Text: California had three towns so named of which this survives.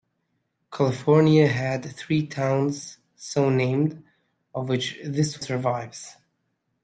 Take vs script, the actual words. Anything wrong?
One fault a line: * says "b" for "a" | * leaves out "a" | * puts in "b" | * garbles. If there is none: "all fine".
all fine